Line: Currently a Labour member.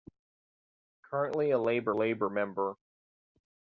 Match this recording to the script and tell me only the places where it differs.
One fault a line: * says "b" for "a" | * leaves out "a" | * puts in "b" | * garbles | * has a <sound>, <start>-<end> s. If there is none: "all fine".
* puts in "Labour"